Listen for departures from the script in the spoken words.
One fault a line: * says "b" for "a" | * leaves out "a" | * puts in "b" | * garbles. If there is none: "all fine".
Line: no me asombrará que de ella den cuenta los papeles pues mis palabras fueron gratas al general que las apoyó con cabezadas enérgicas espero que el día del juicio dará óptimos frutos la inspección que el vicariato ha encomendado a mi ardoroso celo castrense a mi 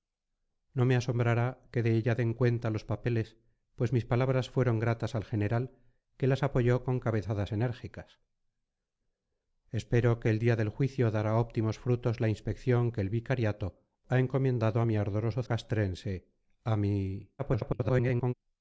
* leaves out "celo"
* garbles